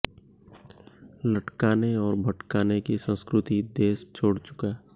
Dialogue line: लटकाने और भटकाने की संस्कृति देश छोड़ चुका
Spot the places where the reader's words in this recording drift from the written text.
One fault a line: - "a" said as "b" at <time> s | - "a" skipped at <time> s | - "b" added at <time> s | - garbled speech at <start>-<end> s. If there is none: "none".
none